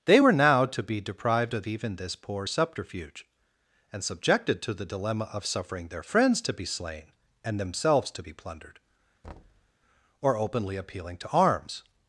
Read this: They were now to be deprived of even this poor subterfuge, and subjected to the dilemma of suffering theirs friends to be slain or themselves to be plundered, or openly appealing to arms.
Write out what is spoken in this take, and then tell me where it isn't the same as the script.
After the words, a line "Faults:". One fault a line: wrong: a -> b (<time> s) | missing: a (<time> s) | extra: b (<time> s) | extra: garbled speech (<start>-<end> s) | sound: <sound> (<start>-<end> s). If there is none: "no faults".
They were now to be deprived of even this poor subterfuge, and subjected to the dilemma of suffering their friends to be slain and themselves to be plundered, or openly appealing to arms.
Faults:
wrong: theirs -> their (5.9 s)
wrong: or -> and (7.4 s)
sound: thud (9.2-9.7 s)